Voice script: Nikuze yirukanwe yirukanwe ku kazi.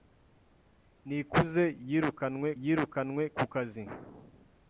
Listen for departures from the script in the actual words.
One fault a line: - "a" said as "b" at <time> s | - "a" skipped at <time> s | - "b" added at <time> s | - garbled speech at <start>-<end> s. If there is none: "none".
none